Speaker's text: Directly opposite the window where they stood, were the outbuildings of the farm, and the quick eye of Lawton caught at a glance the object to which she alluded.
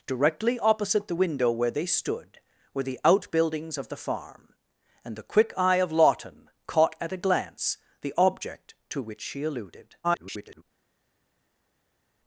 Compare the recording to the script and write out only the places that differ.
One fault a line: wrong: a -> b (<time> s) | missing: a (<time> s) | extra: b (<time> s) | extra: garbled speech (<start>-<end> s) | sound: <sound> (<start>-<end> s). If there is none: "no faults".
extra: garbled speech (10.0-10.6 s)